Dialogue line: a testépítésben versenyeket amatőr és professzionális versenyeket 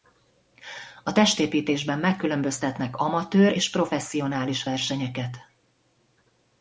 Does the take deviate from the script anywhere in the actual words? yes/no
yes